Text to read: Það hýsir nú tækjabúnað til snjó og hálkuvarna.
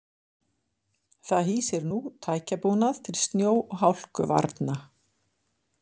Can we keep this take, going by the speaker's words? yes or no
yes